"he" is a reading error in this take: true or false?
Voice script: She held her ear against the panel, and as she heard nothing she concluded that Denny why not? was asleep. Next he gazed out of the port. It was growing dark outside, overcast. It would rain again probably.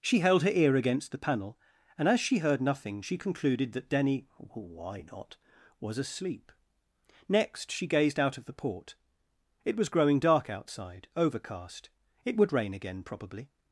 true